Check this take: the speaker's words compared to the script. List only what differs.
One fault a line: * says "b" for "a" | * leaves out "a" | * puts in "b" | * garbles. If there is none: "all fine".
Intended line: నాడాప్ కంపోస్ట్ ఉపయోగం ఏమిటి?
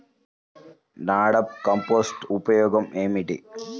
all fine